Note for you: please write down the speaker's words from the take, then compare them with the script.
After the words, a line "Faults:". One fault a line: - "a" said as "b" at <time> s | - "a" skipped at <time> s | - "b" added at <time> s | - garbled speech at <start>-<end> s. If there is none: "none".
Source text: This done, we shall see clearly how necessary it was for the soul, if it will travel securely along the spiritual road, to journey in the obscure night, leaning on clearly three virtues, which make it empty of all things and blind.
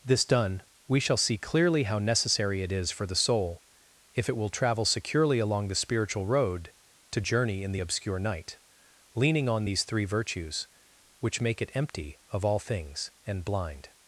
This done, we shall see clearly how necessary it is for the soul, if it will travel securely along the spiritual road, to journey in the obscure night, leaning on these three virtues, which make it empty of all things and blind.
Faults:
- "was" said as "is" at 2.7 s
- "clearly" said as "these" at 9.6 s